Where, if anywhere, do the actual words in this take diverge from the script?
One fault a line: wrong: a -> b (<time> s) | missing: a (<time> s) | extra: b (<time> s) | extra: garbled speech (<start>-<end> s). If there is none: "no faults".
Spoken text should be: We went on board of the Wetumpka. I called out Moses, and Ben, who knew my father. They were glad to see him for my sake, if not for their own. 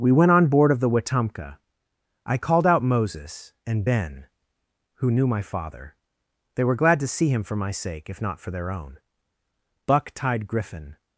extra: Buck tied Griffin (9.9 s)